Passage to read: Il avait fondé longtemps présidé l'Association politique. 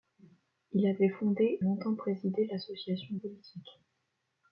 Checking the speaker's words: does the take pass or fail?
pass